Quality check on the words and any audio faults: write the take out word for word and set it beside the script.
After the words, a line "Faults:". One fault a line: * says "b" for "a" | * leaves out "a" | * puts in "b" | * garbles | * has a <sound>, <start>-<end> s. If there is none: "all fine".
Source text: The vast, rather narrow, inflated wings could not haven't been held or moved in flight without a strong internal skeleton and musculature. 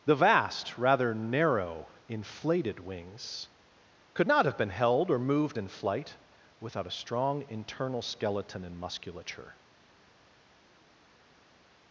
The vast, rather narrow, inflated wings could not have been held or moved in flight without a strong internal skeleton and musculature.
Faults:
* says "have" for "haven't"